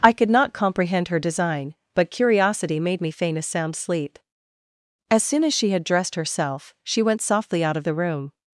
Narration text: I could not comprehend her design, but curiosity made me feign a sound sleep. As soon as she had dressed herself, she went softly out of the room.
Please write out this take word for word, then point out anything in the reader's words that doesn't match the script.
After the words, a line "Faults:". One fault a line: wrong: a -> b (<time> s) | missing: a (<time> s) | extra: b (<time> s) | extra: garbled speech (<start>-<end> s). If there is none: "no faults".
I could not comprehend her design, but curiosity made me feign a sound sleep. As soon as she had dressed herself, she went softly out of the room.
Faults:
no faults